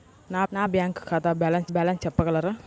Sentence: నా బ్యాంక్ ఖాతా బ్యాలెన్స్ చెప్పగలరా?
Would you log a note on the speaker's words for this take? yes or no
yes